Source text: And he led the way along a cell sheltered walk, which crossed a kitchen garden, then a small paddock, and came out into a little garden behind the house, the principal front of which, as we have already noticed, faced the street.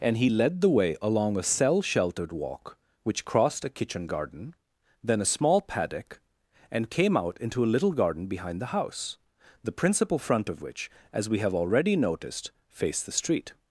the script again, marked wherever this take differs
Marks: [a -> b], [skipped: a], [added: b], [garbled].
And he led the way along a cell sheltered walk, which crossed a kitchen garden, then a small paddock, and came out into a little garden behind the house, the principal front of which, as we have already noticed, faced the street.